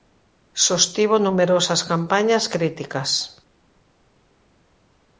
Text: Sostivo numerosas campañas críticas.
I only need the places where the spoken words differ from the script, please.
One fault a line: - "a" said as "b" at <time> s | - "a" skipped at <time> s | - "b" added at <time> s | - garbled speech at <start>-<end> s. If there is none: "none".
none